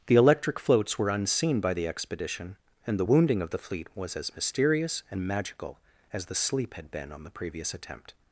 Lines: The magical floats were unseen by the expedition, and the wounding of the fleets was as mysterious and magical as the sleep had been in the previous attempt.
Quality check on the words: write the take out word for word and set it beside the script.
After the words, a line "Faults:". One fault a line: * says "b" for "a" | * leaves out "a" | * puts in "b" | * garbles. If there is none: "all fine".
The electric floats were unseen by the expedition, and the wounding of the fleet was as mysterious and magical as the sleep had been on the previous attempt.
Faults:
* says "electric" for "magical"
* says "fleet" for "fleets"
* says "on" for "in"